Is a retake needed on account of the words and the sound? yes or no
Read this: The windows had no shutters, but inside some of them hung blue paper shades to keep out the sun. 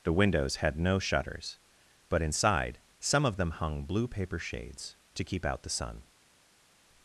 no